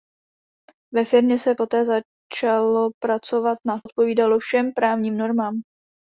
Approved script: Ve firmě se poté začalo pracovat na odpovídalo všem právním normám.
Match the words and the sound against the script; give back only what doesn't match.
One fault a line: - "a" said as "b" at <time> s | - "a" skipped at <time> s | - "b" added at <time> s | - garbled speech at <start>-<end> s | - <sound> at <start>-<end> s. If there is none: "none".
none